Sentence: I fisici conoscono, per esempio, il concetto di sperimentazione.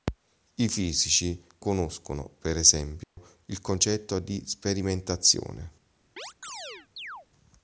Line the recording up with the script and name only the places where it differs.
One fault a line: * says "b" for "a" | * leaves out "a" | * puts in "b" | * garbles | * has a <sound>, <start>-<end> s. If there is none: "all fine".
* has a dropout, 3.0-3.2 s
* has a chirp, 6.2-7.3 s